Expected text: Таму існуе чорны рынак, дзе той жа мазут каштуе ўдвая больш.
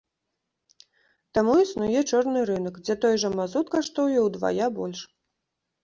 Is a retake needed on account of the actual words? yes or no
no